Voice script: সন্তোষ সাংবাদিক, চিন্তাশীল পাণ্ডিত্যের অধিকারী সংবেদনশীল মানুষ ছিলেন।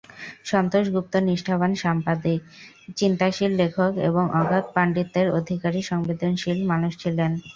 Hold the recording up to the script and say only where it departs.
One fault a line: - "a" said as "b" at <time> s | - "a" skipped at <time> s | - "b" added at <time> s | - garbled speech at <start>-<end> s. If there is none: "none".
- "গুপ্ত নিষ্ঠাবান" added at 0.9 s
- "লেখক এবং অগাধ" added at 3.6 s